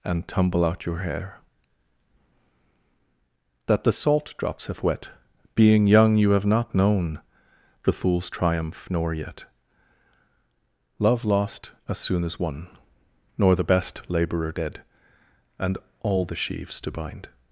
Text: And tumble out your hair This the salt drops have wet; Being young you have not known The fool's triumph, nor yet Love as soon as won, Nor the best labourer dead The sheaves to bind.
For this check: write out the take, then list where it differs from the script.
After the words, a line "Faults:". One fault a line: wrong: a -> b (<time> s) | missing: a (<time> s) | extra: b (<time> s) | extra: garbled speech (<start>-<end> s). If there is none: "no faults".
And tumble out your hair That the salt drops have wet; Being young you have not known The fool's triumph, nor yet Love lost as soon as won, Nor the best labourer dead And all the sheaves to bind.
Faults:
wrong: This -> That (3.7 s)
extra: lost (11.3 s)
extra: And all (15.6 s)